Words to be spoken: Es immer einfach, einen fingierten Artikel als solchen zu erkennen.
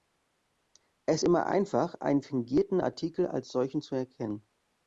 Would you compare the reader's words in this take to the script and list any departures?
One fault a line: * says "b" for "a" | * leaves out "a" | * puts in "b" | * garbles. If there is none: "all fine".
all fine